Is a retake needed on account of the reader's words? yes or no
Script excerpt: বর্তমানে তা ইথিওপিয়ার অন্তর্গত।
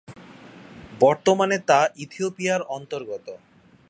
no